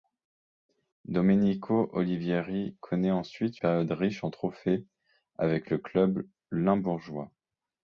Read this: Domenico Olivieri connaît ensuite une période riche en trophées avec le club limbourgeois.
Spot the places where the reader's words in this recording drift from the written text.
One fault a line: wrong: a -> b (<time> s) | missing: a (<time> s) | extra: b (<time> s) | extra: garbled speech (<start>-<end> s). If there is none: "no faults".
missing: une (3.6 s)